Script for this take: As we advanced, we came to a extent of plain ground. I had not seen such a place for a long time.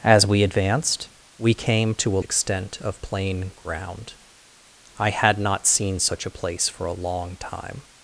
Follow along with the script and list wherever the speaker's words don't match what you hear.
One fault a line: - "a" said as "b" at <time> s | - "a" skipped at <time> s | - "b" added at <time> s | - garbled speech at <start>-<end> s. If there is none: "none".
none